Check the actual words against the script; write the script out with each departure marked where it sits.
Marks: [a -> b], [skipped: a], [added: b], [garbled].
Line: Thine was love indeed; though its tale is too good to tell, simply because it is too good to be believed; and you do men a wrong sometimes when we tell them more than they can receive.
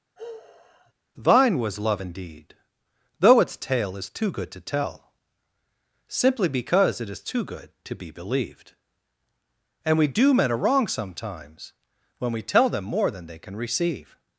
Thine was love indeed; though its tale is too good to tell, simply because it is too good to be believed; and [you -> we] do men a wrong sometimes when we tell them more than they can receive.